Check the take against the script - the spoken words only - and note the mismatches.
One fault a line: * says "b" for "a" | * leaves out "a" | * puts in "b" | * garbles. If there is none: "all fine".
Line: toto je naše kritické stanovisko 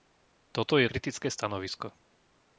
* leaves out "naše"